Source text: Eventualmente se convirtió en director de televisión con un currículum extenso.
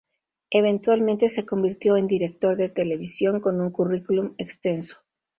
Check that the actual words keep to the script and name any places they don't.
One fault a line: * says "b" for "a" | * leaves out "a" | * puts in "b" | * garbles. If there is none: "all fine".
all fine